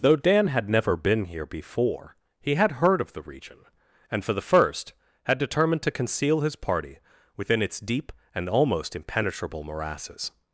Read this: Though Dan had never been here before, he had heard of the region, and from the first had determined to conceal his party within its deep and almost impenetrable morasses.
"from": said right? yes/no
no